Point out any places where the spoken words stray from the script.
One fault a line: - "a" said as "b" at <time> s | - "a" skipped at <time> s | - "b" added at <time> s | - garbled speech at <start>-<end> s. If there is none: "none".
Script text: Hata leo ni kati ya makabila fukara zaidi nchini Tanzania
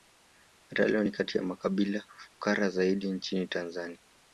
none